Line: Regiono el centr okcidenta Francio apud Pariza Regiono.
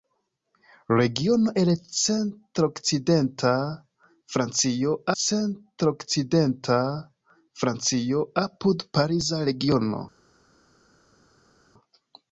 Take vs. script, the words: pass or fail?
fail